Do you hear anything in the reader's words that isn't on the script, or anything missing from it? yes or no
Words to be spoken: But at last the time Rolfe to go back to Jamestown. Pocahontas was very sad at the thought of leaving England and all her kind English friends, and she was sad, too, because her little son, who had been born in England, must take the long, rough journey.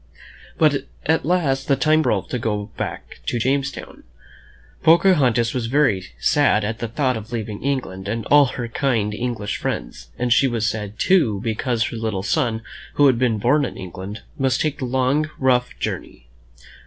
no